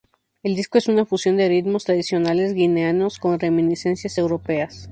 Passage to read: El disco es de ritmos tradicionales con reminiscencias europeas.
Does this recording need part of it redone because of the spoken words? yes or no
yes